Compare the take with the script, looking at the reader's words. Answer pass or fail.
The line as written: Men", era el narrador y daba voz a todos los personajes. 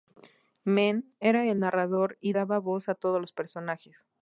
pass